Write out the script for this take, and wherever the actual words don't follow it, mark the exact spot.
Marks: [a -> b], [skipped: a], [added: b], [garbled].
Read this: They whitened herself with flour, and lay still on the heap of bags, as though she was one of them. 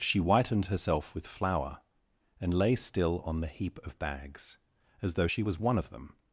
[They -> She] whitened herself with flour, and lay still on the heap of bags, as though she was one of them.